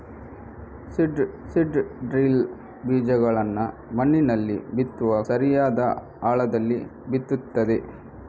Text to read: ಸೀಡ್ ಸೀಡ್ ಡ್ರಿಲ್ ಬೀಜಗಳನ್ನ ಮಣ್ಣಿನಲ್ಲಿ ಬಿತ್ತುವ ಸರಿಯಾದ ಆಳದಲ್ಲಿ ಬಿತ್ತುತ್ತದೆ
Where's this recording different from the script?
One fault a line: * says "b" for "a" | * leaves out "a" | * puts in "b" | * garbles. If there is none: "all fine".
all fine